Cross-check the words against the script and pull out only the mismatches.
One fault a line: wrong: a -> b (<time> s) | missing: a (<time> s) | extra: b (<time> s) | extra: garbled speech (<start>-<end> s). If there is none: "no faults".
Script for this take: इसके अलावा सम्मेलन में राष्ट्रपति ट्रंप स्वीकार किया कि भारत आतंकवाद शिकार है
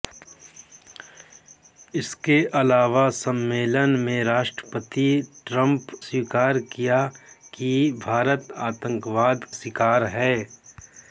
no faults